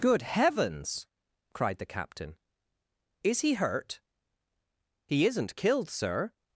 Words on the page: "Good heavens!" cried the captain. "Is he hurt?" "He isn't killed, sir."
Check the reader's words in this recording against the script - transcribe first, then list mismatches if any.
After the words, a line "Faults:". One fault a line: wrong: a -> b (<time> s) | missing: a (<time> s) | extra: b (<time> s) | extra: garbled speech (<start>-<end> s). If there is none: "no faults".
"Good heavens!" cried the captain. "Is he hurt?" "He isn't killed, sir."
Faults:
no faults